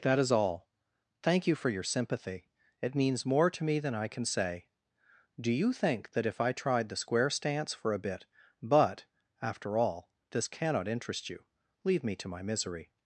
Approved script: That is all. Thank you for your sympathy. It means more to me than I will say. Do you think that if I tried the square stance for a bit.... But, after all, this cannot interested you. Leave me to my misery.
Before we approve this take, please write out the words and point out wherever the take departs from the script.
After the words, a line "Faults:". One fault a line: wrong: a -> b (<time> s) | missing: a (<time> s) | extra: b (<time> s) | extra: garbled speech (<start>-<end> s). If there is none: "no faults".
That is all. Thank you for your sympathy. It means more to me than I can say. Do you think that if I tried the square stance for a bit.... But, after all, this cannot interest you. Leave me to my misery.
Faults:
wrong: will -> can (4.1 s)
wrong: interested -> interest (10.9 s)